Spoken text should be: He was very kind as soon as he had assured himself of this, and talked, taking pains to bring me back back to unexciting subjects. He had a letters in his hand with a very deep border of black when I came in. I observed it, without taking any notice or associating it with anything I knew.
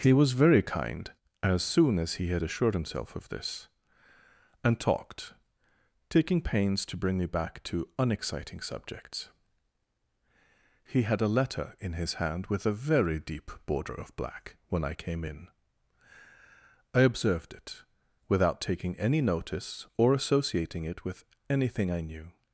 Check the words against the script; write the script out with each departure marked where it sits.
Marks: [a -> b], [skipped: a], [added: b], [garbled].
He was very kind as soon as he had assured himself of this, and talked, taking pains to bring me back [skipped: back] to unexciting subjects. He had a [letters -> letter] in his hand with a very deep border of black when I came in. I observed it, without taking any notice or associating it with anything I knew.